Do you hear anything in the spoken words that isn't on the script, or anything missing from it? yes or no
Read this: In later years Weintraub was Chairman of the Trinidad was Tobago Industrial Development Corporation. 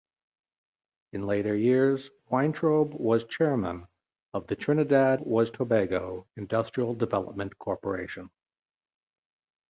no